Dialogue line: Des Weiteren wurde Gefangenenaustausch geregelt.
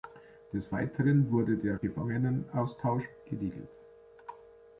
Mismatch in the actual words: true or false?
true